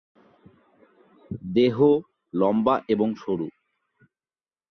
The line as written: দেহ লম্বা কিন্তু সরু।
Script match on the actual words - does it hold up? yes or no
no